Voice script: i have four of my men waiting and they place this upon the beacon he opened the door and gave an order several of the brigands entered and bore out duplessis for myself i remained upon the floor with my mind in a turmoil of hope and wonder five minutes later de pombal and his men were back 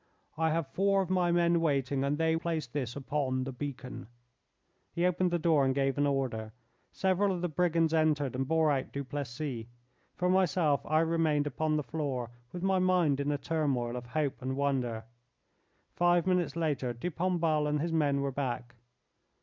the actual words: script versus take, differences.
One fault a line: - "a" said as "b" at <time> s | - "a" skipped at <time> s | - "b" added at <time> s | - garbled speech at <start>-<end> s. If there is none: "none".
none